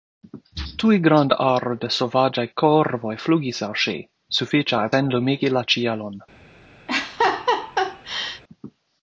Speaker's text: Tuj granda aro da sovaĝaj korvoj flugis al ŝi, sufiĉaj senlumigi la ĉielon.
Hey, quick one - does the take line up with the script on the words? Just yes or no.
yes